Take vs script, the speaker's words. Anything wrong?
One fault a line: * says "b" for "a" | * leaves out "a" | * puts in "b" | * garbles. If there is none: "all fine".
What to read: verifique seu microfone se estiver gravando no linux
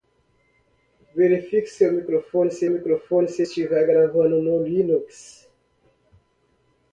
* puts in "microfone se"